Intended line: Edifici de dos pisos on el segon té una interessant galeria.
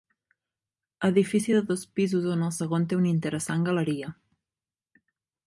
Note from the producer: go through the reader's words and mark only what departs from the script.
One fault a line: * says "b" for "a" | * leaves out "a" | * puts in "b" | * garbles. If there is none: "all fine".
all fine